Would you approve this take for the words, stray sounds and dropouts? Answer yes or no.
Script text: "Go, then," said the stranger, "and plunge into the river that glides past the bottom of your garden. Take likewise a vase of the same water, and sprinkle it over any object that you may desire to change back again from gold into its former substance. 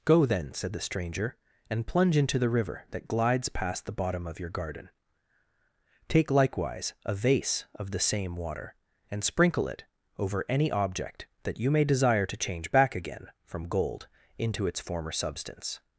yes